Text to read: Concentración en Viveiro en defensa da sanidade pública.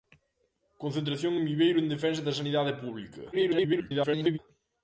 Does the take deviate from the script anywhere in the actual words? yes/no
yes